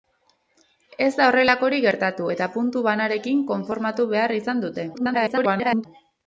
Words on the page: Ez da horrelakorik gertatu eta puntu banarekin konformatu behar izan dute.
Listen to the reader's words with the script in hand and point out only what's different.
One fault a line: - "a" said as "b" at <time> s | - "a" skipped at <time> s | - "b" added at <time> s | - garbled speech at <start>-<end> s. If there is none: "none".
- garbled speech at 4.9-5.9 s